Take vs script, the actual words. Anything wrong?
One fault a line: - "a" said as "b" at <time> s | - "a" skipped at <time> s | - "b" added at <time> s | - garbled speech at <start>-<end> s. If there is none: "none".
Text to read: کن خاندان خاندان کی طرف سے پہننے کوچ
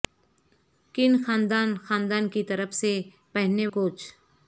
none